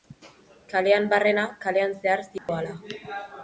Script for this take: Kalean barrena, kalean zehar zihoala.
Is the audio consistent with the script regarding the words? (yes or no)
yes